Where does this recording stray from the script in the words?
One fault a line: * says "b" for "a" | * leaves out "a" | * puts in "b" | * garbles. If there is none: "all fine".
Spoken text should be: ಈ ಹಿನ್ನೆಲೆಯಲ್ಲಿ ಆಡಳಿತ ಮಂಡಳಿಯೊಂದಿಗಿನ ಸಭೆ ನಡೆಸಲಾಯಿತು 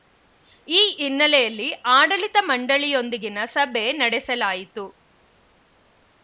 all fine